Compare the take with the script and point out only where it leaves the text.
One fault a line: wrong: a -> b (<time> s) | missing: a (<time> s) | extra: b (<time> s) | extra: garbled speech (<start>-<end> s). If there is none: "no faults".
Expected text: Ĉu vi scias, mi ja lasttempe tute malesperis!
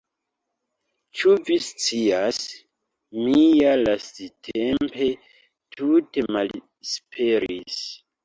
no faults